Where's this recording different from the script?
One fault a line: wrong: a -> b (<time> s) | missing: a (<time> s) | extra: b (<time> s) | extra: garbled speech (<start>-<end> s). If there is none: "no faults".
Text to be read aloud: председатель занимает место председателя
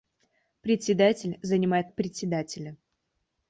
missing: место (1.9 s)